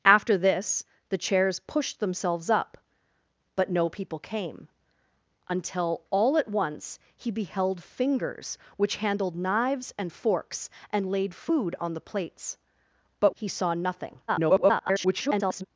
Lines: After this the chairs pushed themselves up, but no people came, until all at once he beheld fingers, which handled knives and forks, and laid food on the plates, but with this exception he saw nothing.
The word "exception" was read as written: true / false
false